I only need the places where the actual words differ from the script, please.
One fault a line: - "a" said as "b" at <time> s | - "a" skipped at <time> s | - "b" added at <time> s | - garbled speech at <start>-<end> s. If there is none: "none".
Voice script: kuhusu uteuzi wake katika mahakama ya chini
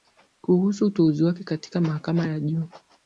- "chini" said as "juu" at 2.4 s